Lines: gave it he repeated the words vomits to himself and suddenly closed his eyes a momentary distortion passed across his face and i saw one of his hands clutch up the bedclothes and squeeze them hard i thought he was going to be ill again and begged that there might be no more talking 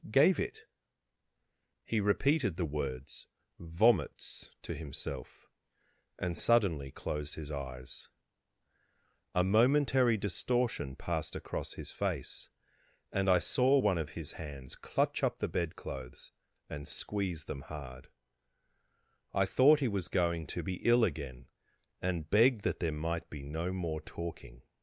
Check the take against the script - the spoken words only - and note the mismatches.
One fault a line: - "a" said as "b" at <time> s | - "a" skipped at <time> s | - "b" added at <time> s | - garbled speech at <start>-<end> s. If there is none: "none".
none